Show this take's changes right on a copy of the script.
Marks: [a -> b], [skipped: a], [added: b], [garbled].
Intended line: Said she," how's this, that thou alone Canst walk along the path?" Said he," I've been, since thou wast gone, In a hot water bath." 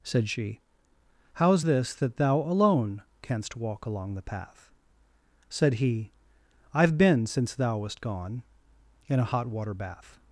Said she," how's this, that thou alone Canst walk along the path?" Said he," I've been, since thou wast gone, In a hot water bath."